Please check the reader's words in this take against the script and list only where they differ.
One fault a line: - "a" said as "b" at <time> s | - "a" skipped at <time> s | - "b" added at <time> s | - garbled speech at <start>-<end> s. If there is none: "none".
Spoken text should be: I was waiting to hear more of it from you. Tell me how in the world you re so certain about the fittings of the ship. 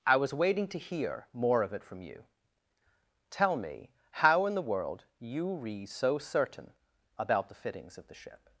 none